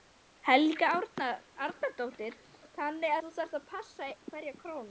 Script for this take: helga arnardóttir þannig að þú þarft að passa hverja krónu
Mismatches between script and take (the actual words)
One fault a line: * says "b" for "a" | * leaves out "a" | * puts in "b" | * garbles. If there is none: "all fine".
* leaves out "að"